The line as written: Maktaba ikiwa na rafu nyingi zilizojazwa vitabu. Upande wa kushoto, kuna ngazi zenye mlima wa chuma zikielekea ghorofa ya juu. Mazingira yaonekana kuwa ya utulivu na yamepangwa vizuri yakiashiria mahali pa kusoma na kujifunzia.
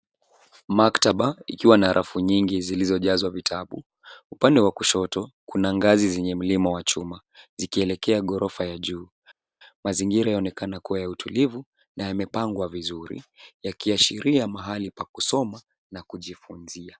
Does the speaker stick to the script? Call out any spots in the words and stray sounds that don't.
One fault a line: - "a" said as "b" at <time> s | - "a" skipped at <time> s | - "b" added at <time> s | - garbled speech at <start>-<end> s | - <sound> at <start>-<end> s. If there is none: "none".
none